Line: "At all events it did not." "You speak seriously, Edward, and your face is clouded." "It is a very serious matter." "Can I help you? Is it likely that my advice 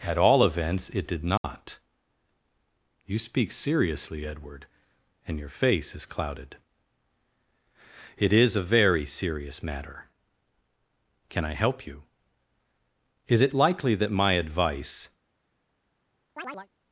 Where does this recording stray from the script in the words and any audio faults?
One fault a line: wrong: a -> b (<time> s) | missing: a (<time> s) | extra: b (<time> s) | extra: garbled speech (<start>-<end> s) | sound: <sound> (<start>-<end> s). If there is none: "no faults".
sound: dropout (1.4-1.4 s)
sound: chirp (16.4-16.7 s)